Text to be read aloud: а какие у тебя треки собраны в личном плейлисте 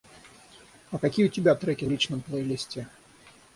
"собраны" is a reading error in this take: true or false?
true